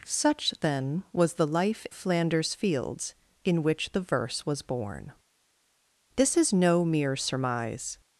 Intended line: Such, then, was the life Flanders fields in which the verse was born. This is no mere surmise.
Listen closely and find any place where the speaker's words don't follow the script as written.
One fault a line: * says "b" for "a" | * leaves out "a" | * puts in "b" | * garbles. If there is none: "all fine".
all fine